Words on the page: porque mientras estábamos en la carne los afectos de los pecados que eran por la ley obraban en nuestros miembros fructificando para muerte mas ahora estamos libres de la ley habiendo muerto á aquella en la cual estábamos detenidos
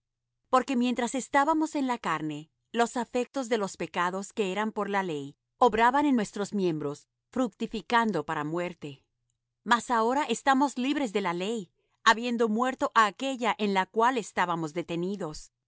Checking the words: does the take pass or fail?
pass